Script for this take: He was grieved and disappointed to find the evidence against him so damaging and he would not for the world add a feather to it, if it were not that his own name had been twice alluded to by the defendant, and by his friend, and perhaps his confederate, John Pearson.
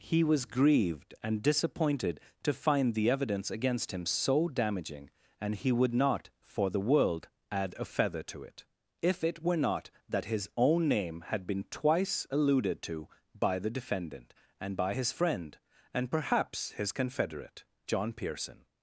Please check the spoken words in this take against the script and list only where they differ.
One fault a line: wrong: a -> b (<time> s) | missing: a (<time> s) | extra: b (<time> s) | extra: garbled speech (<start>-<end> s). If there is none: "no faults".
no faults